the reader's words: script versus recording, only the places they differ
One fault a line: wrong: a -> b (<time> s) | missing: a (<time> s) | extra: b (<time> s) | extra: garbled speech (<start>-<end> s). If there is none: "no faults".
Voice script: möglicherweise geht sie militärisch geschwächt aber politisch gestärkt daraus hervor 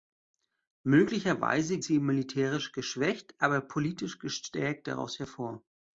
missing: geht (1.8 s)